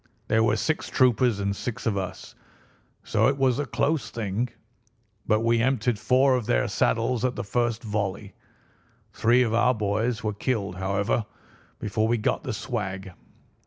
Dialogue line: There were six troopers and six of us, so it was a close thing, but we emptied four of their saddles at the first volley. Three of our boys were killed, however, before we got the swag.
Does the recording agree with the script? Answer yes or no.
yes